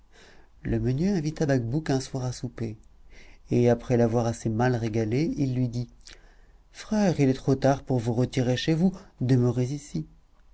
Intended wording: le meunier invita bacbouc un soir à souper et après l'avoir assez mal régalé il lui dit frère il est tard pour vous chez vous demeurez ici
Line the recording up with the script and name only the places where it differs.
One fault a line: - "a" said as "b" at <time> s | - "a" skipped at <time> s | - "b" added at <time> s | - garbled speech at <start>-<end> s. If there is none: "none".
- "trop" added at 7.3 s
- "retirer" added at 8.1 s